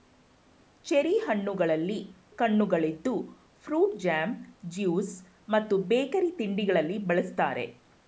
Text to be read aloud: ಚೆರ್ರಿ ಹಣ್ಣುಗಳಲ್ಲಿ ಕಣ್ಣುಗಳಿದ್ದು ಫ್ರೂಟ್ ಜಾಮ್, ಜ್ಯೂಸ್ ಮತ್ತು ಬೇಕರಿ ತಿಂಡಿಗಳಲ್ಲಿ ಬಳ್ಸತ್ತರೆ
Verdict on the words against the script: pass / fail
pass